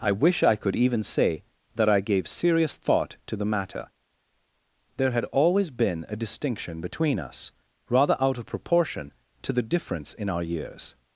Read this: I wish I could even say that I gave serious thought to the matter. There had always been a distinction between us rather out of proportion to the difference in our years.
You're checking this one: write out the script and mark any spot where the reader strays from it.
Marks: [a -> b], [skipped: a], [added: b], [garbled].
I wish I could even say that I gave serious thought to the matter. There had always been a distinction between us rather out of proportion to the difference in our years.